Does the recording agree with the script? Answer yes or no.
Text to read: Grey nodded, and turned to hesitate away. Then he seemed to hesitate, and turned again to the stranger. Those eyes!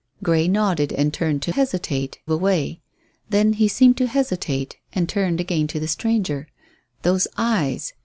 yes